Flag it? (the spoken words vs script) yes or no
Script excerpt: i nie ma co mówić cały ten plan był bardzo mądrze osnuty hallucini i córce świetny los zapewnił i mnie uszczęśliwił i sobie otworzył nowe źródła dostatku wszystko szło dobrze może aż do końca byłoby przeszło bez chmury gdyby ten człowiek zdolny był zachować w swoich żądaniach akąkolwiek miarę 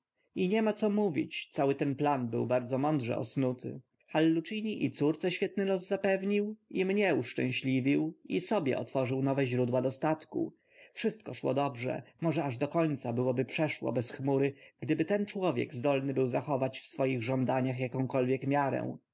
no